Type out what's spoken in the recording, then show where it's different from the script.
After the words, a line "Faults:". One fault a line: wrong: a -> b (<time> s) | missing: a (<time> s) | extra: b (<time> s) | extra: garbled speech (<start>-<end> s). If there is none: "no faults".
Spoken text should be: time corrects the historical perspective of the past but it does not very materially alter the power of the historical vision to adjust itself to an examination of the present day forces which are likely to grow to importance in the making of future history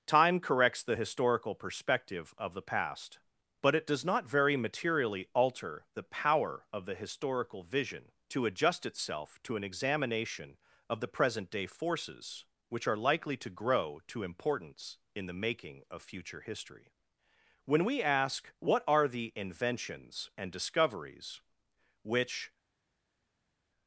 time corrects the historical perspective of the past but it does not very materially alter the power of the historical vision to adjust itself to an examination of the present day forces which are likely to grow to importance in the making of future history when we ask what are the inventions and discoveries which
Faults:
extra: when we ask what are the inventions and discoveries which (17.7 s)